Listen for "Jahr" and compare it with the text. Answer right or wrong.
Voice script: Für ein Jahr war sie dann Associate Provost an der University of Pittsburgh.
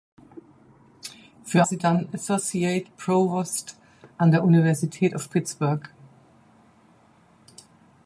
wrong